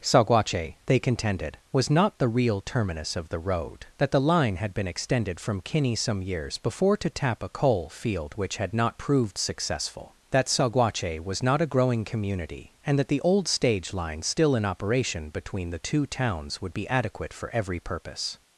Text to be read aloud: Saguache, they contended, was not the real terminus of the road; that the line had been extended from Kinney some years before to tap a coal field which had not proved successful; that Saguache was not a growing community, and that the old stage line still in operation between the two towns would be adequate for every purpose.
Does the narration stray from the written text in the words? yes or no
no